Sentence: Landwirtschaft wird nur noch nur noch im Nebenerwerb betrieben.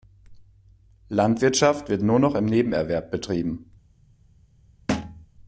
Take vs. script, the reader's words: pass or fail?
fail